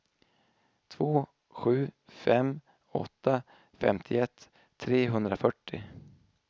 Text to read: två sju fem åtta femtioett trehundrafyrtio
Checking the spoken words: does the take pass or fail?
pass